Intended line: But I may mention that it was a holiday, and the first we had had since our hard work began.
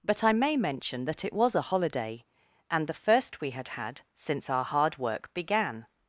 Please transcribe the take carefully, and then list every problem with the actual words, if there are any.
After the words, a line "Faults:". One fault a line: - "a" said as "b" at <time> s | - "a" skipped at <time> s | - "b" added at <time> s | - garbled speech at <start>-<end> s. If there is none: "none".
But I may mention that it was a holiday, and the first we had had since our hard work began.
Faults:
none